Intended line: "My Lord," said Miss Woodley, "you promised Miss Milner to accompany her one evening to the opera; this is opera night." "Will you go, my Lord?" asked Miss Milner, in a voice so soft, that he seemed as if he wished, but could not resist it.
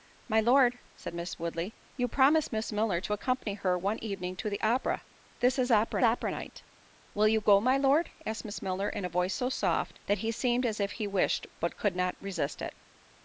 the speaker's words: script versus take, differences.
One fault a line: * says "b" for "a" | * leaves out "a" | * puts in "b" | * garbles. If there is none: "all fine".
* puts in "opera"